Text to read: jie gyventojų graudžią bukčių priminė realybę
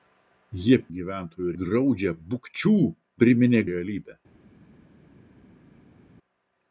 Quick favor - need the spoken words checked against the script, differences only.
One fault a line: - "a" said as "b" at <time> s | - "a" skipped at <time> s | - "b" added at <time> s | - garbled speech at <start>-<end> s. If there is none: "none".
none